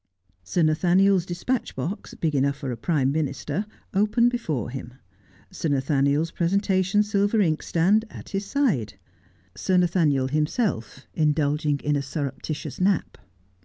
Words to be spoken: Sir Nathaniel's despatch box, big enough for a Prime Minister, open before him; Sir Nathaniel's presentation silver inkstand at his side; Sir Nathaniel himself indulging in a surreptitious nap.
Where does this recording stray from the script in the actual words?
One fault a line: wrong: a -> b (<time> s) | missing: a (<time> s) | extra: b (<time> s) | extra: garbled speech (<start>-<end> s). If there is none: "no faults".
no faults